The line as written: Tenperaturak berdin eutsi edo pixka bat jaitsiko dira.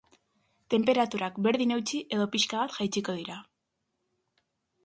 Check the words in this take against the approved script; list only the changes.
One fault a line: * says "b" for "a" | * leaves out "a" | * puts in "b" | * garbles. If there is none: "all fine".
all fine